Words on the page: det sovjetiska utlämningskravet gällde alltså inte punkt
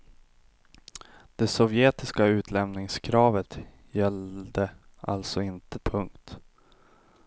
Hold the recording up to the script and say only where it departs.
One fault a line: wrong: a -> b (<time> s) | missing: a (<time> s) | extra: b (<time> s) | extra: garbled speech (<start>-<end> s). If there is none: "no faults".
no faults